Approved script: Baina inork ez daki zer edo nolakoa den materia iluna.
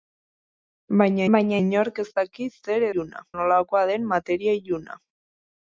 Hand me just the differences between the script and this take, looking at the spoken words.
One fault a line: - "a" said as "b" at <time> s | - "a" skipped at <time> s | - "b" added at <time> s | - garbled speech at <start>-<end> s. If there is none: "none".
- "baina" added at 1.3 s
- "edo" said as "iluna" at 2.9 s